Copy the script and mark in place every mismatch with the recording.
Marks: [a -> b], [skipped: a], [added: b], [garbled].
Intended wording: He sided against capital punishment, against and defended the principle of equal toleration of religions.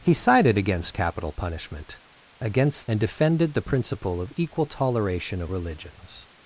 He sided against capital punishment, against and defended the principle of equal toleration of religions.